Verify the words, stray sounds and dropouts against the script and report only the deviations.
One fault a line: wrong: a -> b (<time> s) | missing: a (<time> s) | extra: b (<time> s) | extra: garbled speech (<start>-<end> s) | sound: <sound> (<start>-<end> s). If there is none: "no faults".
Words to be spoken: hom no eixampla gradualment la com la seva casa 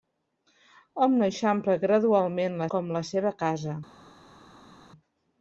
no faults